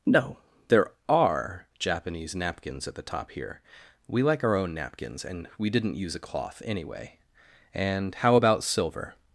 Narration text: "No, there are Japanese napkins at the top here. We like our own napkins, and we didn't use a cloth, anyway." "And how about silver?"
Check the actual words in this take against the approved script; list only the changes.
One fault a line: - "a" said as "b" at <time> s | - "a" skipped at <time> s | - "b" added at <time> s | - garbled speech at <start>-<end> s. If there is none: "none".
none